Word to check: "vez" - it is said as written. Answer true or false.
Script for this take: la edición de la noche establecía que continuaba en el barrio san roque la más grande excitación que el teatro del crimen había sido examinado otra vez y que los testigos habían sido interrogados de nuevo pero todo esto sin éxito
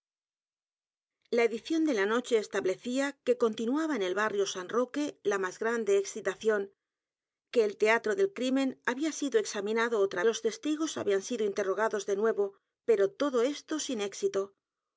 false